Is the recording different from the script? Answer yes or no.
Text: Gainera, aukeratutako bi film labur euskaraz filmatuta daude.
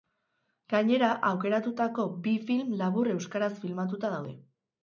no